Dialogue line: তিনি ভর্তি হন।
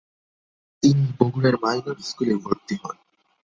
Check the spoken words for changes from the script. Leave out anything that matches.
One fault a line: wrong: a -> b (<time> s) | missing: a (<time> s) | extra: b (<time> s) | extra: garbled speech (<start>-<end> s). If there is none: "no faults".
extra: বগুড়ার মাইনর স্কুলে (1.2 s)